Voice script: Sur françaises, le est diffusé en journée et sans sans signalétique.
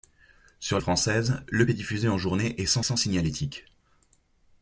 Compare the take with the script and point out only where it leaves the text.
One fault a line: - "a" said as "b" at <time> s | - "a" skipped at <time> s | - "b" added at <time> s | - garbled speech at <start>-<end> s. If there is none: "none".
none